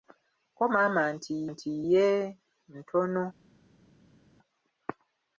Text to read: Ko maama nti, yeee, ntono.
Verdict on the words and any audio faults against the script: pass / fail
fail